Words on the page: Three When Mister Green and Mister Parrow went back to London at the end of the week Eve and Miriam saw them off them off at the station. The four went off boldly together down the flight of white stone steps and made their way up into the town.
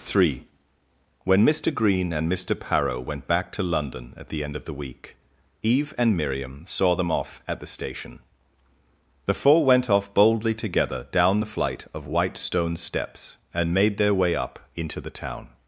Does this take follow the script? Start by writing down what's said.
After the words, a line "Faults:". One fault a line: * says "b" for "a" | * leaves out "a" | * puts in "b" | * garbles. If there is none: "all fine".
Three When Mister Green and Mister Parrow went back to London at the end of the week Eve and Miriam saw them off at the station. The four went off boldly together down the flight of white stone steps and made their way up into the town.
Faults:
* leaves out "them off"